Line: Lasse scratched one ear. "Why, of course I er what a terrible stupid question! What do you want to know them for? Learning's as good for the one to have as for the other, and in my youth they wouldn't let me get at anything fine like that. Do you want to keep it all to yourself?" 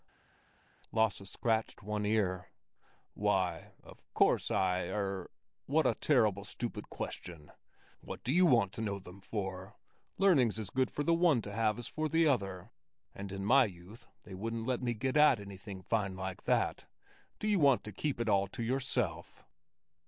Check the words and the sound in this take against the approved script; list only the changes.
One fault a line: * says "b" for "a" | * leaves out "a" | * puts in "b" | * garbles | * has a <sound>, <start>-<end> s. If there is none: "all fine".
all fine